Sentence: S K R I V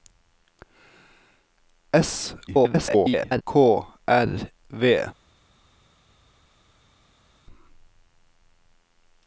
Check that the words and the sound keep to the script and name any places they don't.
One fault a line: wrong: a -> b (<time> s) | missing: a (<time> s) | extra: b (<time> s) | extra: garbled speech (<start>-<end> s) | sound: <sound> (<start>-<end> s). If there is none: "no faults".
extra: garbled speech (2.5-3.4 s)
missing: I (4.5 s)